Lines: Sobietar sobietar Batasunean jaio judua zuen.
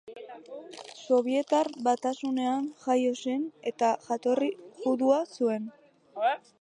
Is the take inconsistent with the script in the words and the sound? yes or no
yes